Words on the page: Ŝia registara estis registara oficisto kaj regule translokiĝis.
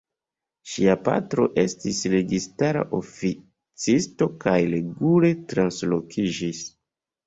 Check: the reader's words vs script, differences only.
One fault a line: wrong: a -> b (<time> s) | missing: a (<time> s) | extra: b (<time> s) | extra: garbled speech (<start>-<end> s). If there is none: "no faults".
wrong: registara -> patro (1.1 s)